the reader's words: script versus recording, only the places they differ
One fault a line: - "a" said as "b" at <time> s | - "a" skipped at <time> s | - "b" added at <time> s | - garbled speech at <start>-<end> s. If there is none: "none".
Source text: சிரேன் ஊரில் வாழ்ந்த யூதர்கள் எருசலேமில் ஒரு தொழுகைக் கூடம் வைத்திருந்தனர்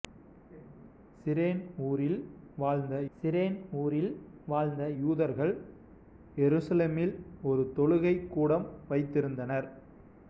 - "சிரேன் ஊரில் வாழ்ந்த" added at 3.1 s